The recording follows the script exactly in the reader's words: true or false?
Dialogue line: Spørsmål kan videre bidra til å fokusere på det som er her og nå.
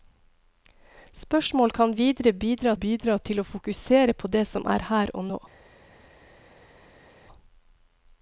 false